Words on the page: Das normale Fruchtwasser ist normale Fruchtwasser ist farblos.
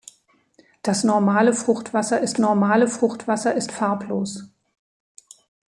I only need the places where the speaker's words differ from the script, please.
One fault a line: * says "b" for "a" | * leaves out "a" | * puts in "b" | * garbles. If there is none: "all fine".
all fine